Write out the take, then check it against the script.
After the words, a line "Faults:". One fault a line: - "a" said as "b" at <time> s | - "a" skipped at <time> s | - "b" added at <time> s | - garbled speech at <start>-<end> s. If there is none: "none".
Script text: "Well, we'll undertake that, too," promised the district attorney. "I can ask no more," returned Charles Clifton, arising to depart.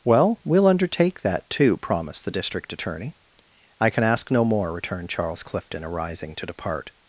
"Well, we'll undertake that, too," promised the district attorney. "I can ask no more," returned Charles Clifton, arising to depart.
Faults:
none